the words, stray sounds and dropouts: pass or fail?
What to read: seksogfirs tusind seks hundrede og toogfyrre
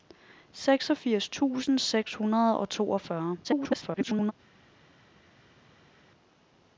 fail